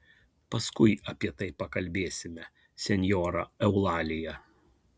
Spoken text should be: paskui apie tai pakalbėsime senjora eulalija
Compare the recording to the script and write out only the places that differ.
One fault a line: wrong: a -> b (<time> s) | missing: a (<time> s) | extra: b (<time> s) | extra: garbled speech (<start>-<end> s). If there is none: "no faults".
no faults